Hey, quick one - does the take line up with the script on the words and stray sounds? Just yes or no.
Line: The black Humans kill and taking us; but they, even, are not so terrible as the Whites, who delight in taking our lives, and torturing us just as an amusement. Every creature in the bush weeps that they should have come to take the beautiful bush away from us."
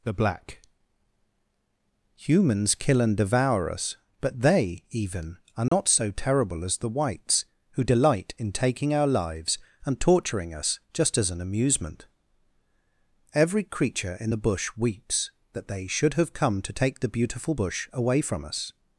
no